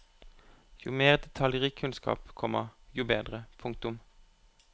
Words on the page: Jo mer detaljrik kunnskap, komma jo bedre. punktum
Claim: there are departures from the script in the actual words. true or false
false